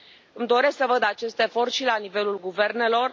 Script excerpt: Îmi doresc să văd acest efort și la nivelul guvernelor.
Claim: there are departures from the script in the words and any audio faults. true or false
false